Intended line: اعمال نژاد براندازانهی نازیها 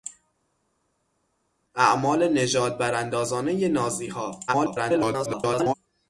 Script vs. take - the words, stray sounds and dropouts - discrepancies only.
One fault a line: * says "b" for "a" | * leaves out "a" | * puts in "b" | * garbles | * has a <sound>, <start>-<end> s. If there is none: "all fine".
* garbles